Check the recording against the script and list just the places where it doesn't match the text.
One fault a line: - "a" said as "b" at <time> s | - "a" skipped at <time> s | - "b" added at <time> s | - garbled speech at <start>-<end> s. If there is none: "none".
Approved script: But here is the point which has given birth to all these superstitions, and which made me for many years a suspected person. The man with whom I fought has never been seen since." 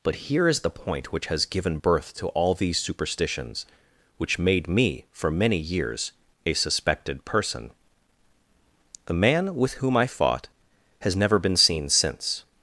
- "and" skipped at 3.7 s